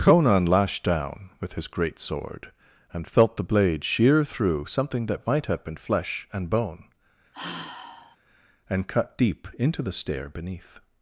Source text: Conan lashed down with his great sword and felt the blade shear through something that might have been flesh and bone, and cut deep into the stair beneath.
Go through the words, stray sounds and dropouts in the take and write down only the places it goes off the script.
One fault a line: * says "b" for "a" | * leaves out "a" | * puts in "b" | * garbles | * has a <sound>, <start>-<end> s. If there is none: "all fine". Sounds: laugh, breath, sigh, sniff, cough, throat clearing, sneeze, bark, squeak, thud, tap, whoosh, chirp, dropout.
* has a sigh, 7.3-8.2 s